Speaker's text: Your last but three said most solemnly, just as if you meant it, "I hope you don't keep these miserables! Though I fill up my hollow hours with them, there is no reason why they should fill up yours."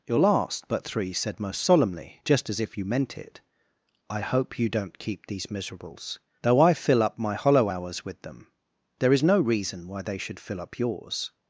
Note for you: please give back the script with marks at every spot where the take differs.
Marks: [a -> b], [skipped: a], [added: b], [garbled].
Your last but three said most solemnly, just as if you meant it, "I hope you don't keep these miserables! Though I fill up my hollow hours with them, there is no reason why they should fill up yours."